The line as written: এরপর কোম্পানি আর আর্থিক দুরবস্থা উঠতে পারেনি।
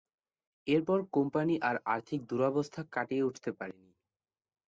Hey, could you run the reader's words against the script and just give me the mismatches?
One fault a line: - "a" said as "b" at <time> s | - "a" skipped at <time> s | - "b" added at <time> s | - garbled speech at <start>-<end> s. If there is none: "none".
- "কাটিয়ে" added at 2.9 s